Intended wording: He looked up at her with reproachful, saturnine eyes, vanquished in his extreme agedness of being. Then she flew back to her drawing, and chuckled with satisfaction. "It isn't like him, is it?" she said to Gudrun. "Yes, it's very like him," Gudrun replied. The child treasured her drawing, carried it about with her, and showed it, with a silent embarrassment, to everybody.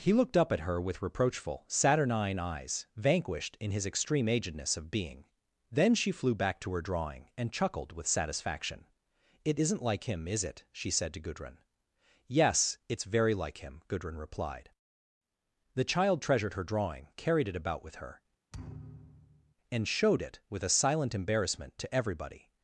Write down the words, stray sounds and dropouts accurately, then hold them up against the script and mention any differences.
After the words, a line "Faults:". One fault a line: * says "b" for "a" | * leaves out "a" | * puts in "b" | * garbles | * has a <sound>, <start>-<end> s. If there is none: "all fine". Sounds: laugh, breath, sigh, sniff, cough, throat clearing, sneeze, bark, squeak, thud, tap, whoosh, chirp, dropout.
He looked up at her with reproachful, saturnine eyes, vanquished in his extreme agedness of being. Then she flew back to her drawing, and chuckled with satisfaction. "It isn't like him, is it?" she said to Gudrun. "Yes, it's very like him," Gudrun replied. The child treasured her drawing, carried it about with her, and showed it, with a silent embarrassment, to everybody.
Faults:
* has a thud, 18.5-19.5 s